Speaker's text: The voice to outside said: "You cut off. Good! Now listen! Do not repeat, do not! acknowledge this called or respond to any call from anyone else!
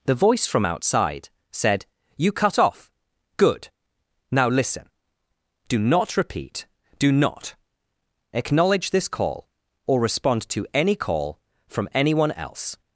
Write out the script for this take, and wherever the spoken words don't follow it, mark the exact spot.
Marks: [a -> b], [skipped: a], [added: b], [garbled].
The voice [to -> from] outside said: "You cut off. Good! Now listen! Do not repeat, do not! acknowledge this [called -> call] or respond to any call from anyone else!